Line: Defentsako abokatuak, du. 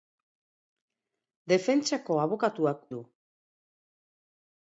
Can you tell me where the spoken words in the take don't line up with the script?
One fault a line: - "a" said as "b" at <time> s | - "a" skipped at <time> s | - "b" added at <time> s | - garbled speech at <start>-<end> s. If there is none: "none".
none